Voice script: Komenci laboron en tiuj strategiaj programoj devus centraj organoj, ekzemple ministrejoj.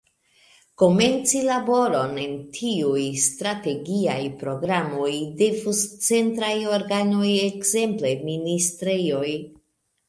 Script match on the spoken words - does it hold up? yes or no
yes